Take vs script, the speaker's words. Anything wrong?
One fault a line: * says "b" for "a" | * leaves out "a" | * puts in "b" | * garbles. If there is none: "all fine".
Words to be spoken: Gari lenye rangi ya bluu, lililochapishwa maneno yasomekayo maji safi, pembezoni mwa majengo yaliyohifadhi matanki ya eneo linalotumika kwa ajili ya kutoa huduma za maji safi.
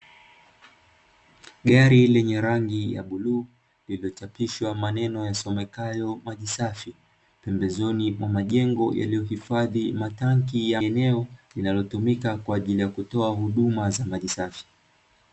all fine